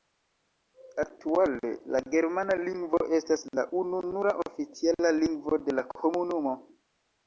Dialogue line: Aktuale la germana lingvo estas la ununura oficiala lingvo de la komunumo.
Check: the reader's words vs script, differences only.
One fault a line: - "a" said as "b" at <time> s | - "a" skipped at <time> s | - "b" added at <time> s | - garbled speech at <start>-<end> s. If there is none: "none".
none